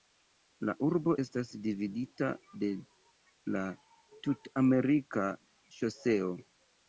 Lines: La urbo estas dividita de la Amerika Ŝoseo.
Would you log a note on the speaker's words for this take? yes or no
yes